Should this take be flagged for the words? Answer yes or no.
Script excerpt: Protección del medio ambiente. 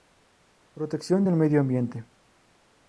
no